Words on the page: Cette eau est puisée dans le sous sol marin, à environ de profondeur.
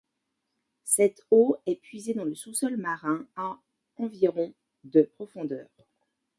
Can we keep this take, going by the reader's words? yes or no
yes